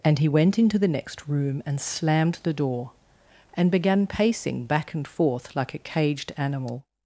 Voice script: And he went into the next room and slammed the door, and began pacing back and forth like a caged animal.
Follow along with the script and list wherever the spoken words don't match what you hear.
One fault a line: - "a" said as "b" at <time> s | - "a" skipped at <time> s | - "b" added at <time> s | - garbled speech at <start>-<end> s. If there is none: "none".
none